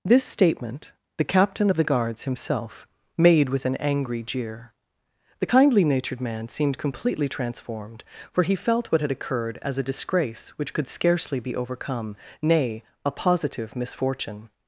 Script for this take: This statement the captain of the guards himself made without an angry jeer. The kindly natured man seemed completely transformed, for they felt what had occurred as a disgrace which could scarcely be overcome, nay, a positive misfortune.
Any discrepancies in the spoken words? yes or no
yes